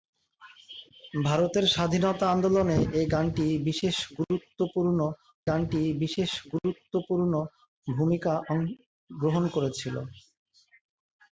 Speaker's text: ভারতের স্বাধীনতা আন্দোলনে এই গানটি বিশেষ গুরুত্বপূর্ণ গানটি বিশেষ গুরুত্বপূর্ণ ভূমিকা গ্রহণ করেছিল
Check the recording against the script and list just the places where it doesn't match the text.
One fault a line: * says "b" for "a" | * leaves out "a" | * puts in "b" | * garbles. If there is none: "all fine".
all fine